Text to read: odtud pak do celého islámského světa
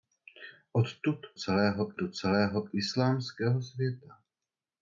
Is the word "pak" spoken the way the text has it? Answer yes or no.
no